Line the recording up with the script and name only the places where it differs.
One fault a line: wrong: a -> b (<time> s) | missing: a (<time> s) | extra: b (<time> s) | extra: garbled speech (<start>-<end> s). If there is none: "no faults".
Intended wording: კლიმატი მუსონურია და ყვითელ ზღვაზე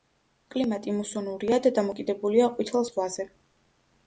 extra: დამოკიდებულია (1.8 s)